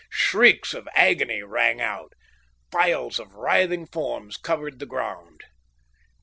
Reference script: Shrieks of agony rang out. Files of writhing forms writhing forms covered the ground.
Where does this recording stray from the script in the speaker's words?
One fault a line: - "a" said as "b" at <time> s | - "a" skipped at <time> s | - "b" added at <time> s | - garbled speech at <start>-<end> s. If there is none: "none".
- "writhing forms" skipped at 4.4 s